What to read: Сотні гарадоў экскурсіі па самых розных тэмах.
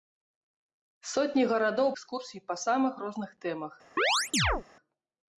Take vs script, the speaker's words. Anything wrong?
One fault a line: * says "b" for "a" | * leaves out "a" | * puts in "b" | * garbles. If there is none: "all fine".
all fine